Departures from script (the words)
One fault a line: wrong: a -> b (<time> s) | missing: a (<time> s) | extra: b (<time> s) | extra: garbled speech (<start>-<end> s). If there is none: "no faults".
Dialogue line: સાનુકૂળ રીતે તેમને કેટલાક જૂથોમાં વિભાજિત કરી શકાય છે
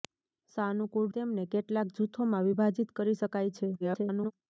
missing: રીતે (1.1 s)
extra: garbled speech (3.8-4.3 s)